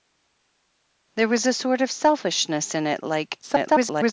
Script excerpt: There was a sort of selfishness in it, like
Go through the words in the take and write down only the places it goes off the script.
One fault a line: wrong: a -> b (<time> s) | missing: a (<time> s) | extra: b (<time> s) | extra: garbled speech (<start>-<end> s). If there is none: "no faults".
extra: garbled speech (3.4-4.1 s)